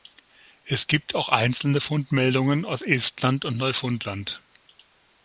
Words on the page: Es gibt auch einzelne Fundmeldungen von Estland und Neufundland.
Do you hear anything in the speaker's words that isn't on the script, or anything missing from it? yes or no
yes